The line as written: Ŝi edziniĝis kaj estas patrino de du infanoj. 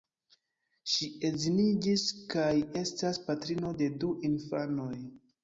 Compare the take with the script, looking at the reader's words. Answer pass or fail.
pass